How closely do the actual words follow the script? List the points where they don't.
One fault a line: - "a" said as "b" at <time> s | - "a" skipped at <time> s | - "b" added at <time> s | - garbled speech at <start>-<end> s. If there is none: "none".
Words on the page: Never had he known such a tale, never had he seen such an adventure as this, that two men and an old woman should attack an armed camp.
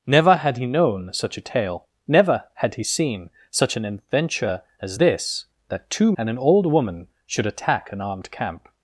- "men" skipped at 6.1 s